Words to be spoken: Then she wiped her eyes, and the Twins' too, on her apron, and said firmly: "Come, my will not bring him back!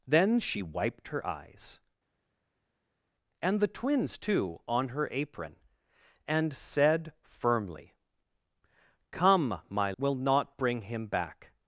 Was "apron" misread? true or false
false